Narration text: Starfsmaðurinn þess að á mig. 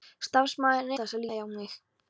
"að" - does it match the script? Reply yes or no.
yes